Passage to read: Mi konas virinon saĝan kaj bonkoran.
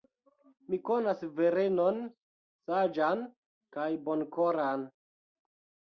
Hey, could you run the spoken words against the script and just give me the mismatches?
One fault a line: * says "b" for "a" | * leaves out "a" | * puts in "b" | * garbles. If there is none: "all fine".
all fine